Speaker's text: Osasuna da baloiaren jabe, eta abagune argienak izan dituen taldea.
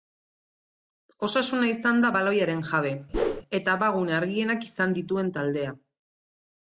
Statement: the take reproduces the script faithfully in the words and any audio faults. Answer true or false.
false